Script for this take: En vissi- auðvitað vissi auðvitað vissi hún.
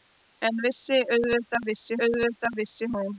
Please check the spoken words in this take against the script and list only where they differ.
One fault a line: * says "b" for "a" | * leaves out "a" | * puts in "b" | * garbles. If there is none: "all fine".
all fine